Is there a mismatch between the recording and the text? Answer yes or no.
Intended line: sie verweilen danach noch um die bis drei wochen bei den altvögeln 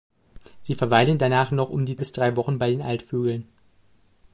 no